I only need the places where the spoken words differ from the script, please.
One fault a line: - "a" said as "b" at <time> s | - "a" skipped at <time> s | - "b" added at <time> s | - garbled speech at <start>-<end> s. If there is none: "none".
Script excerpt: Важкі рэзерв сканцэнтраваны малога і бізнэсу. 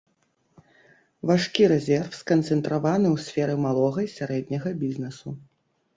- "ў сферы" added at 3.1 s
- "сярэдняга" added at 4.2 s